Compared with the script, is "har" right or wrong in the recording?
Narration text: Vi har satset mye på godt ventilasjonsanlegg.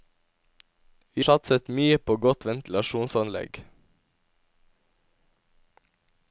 wrong